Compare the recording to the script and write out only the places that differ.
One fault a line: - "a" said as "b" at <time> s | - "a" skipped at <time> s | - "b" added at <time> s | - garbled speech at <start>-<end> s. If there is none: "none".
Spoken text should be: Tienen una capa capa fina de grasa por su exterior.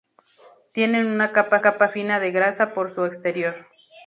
none